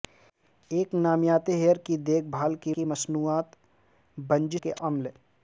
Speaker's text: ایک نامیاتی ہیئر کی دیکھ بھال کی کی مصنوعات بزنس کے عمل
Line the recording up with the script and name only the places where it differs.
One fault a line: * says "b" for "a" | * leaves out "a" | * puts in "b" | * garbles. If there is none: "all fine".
all fine